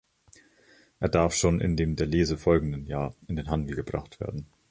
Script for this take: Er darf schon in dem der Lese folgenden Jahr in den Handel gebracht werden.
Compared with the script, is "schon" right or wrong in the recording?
right